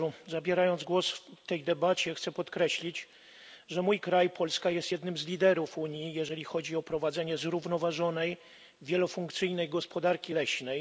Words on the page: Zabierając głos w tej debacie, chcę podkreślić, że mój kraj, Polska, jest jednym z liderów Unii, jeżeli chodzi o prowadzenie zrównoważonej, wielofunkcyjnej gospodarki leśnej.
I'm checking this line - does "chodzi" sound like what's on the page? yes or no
yes